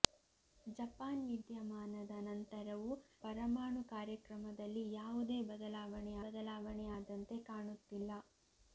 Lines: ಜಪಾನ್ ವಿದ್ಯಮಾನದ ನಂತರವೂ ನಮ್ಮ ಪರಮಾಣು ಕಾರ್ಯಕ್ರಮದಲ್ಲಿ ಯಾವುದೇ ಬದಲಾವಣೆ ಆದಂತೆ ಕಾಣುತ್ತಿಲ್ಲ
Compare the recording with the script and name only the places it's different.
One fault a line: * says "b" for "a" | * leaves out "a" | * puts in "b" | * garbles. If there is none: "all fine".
* leaves out "ನಮ್ಮ"
* puts in "ಬದಲಾವಣೆ"